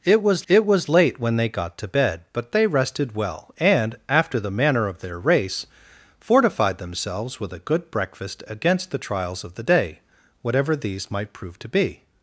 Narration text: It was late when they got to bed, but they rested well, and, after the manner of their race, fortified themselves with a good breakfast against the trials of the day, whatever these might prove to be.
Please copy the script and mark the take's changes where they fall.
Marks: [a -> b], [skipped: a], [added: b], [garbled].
It was [added: it was] late when they got to bed, but they rested well, and, after the manner of their race, fortified themselves with a good breakfast against the trials of the day, whatever these might prove to be.